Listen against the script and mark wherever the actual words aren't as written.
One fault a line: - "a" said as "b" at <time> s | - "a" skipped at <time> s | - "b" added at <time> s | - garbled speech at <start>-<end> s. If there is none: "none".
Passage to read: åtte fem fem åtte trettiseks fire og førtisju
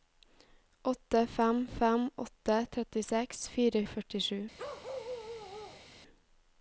none